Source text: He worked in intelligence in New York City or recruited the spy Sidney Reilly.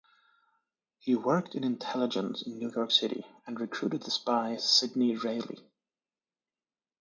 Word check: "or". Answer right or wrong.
wrong